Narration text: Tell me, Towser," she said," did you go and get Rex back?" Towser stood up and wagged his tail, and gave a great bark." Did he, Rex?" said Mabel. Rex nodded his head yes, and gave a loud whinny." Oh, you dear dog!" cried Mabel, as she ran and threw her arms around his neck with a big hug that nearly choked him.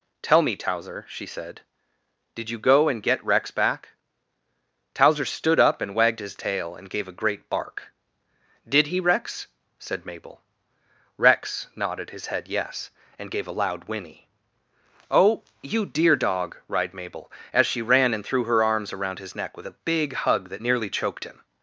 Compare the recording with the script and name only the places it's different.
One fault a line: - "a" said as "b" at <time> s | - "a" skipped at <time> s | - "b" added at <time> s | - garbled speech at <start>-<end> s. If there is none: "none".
none